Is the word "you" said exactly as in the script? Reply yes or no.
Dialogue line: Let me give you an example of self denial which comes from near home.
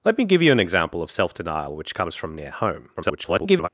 yes